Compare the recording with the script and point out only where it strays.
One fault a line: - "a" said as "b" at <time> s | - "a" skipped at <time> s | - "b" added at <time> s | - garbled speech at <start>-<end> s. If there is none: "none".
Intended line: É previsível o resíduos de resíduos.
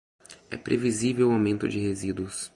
- "resíduos" said as "aumento" at 1.3 s